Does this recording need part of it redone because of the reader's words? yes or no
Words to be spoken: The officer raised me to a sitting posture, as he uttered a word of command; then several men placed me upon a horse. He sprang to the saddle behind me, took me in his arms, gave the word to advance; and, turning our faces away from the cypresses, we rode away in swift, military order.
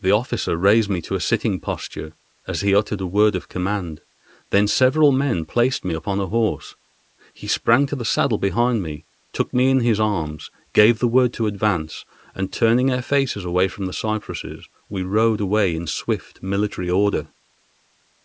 no